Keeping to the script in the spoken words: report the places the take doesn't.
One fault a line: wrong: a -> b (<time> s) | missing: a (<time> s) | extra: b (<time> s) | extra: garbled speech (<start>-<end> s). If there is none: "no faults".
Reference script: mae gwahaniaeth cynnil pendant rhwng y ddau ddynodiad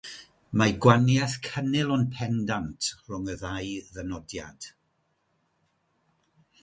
extra: ond (2.0 s)